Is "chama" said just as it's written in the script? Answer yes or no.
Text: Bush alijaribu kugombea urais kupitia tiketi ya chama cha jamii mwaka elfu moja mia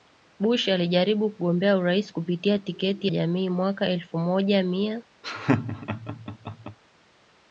no